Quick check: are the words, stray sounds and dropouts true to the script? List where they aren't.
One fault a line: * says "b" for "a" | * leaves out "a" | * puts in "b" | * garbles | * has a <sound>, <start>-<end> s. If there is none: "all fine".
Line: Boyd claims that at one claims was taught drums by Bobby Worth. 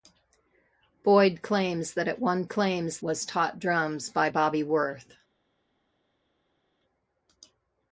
all fine